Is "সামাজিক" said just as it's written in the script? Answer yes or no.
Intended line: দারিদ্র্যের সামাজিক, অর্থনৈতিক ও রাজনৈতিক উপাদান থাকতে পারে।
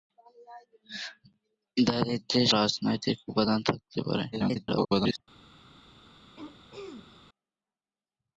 no